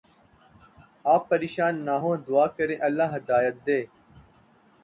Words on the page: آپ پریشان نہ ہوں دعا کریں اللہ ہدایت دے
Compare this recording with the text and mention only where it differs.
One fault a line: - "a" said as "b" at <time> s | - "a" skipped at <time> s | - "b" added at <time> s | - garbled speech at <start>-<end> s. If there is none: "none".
none